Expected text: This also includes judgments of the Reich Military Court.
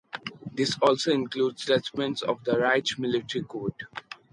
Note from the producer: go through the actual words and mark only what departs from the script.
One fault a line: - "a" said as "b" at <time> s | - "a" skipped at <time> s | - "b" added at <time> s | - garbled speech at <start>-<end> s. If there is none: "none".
none